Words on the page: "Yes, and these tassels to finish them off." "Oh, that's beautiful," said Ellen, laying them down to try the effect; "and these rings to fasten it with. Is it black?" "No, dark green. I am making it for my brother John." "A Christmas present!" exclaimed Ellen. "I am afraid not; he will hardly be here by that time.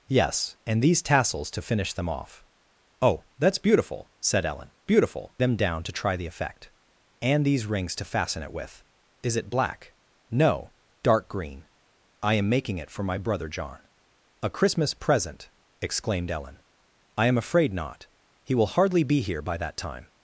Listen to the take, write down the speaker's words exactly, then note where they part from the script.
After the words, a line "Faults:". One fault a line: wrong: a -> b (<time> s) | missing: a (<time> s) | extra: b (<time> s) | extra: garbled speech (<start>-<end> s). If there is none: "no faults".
"Yes, and these tassels to finish them off." "Oh, that's beautiful," said Ellen, beautiful them down to try the effect; "and these rings to fasten it with. Is it black?" "No, dark green. I am making it for my brother John." "A Christmas present!" exclaimed Ellen. "I am afraid not; he will hardly be here by that time.
Faults:
wrong: laying -> beautiful (4.8 s)